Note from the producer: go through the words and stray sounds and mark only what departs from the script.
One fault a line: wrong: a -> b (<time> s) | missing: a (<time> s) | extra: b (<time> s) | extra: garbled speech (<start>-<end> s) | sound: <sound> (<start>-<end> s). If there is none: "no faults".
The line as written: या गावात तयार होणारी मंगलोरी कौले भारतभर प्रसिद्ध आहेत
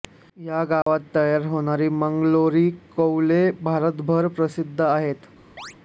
sound: dropout (0.8-0.9 s)
sound: chirp (5.6-5.7 s)